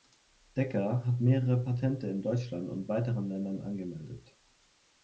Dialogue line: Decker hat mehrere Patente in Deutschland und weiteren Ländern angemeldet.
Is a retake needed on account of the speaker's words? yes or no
no